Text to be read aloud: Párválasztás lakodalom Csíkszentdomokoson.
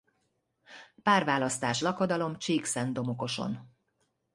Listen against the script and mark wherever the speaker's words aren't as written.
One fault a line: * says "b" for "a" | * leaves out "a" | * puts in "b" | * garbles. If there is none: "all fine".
all fine